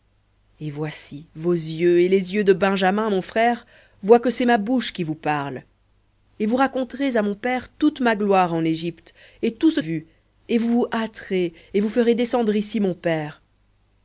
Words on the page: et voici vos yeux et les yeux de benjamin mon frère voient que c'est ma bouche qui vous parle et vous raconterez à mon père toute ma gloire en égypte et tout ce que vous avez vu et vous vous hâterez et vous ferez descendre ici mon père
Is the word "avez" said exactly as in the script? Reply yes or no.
no